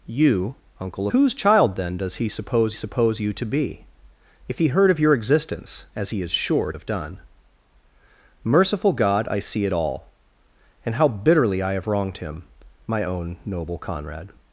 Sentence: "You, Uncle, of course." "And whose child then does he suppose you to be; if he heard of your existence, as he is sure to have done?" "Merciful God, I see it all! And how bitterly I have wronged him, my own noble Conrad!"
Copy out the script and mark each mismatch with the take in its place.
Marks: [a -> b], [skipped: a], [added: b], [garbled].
"You, Uncle, [skipped: of course." "And] whose child then does he suppose [added: suppose] you to be; if he heard of your existence, as he is sure [skipped: to] have done?" "Merciful God, I see it all! And how bitterly I have wronged him, my own noble Conrad!"